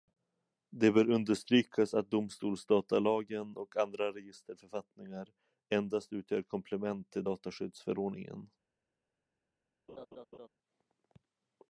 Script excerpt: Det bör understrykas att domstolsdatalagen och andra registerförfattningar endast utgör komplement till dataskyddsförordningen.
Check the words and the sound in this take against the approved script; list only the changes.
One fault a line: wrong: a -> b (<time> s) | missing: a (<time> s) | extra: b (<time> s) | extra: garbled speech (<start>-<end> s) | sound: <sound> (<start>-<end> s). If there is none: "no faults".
sound: laugh (9.9-10.5 s)